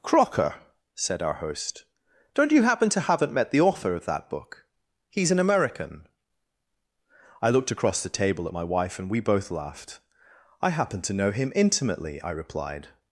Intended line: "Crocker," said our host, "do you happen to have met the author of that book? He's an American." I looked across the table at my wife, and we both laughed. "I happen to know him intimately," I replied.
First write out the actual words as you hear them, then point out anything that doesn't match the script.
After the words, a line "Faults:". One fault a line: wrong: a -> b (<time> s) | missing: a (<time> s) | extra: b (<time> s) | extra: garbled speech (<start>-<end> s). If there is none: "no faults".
"Crocker," said our host, "don't you happen to haven't met the author of that book? He's an American." I looked across the table at my wife, and we both laughed. "I happen to know him intimately," I replied.
Faults:
wrong: do -> don't (2.3 s)
wrong: have -> haven't (3.0 s)